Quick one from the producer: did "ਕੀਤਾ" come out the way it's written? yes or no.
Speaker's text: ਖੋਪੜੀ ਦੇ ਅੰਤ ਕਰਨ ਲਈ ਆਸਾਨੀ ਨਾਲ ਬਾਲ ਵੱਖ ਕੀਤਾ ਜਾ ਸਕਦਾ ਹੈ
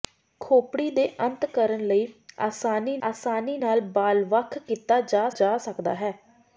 yes